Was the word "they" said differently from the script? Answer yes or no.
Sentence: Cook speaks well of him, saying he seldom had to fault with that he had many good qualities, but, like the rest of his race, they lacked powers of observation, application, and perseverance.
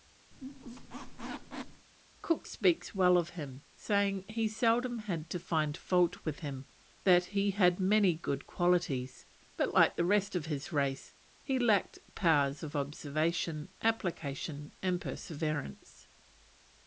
yes